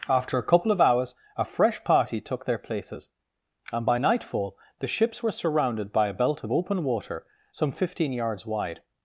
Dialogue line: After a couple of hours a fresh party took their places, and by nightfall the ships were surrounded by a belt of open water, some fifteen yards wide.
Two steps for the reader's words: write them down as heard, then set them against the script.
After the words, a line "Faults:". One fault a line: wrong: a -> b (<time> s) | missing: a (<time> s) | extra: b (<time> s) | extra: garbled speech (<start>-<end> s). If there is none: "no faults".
After a couple of hours a fresh party took their places, and by nightfall the ships were surrounded by a belt of open water, some fifteen yards wide.
Faults:
no faults